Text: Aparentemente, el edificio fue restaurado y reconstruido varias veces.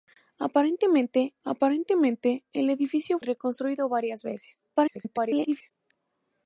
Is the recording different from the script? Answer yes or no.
yes